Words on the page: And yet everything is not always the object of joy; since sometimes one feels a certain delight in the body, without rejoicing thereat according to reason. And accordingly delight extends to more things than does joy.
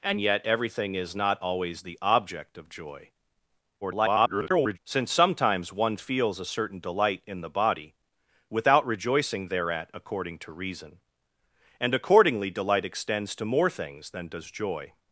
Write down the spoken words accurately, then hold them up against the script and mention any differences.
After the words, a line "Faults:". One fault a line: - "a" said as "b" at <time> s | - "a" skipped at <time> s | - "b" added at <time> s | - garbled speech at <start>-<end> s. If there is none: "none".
And yet everything is not always the object of joy; [garbled] since sometimes one feels a certain delight in the body, without rejoicing thereat according to reason. And accordingly delight extends to more things than does joy.
Faults:
- garbled speech at 3.8-4.8 s